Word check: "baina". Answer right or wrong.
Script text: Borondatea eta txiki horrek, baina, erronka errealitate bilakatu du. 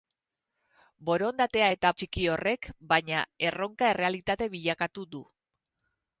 right